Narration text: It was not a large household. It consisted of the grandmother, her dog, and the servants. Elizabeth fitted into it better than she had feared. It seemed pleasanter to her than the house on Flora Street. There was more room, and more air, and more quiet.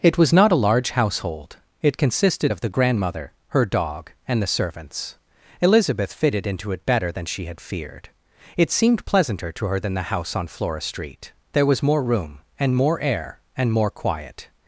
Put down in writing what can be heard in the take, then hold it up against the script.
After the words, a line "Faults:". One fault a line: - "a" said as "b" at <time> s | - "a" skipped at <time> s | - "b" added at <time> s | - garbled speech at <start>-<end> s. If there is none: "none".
It was not a large household. It consisted of the grandmother, her dog, and the servants. Elizabeth fitted into it better than she had feared. It seemed pleasanter to her than the house on Flora Street. There was more room, and more air, and more quiet.
Faults:
none